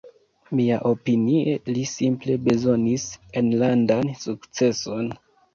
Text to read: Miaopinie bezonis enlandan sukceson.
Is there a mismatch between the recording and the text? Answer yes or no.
yes